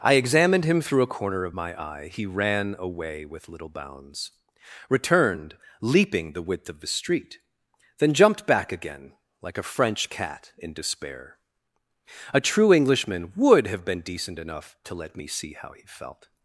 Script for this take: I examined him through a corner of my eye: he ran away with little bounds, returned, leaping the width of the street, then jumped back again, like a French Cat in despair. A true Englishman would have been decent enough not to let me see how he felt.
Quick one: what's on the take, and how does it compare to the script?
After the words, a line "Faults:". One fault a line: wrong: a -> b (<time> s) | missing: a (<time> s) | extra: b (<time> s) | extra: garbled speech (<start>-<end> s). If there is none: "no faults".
I examined him through a corner of my eye: he ran away with little bounds, returned, leaping the width of the street, then jumped back again, like a French Cat in despair. A true Englishman would have been decent enough to let me see how he felt.
Faults:
missing: not (14.8 s)